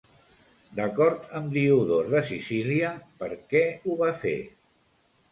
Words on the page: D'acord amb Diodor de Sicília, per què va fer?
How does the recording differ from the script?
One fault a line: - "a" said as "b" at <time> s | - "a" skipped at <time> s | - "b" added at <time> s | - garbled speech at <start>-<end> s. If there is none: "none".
- "ho" added at 3.9 s